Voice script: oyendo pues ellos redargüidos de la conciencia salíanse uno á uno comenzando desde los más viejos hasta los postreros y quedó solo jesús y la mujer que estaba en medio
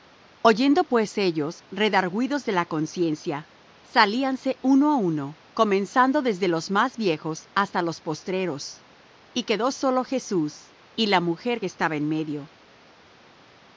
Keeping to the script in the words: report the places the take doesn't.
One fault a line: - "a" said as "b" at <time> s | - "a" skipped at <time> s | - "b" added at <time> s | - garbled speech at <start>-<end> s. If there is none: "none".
none